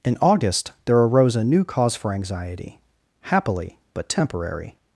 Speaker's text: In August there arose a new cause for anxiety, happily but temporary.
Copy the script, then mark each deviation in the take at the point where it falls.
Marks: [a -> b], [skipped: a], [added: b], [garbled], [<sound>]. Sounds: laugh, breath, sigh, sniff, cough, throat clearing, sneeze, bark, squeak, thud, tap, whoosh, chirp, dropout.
In August there arose a new cause for anxiety, happily but temporary.